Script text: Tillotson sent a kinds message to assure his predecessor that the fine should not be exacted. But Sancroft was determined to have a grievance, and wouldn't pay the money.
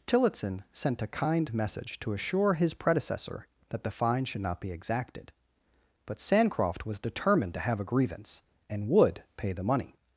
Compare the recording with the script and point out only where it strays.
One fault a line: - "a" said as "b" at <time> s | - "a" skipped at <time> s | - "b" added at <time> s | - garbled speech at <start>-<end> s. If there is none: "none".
- "kinds" said as "kind" at 1.1 s
- "wouldn't" said as "would" at 8.9 s